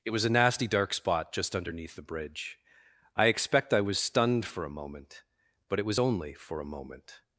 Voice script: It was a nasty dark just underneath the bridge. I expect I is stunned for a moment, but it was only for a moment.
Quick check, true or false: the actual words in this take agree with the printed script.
false